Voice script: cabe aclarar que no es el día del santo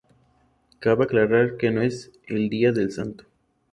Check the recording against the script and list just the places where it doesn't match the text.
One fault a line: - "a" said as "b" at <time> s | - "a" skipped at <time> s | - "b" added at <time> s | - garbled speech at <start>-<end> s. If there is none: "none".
none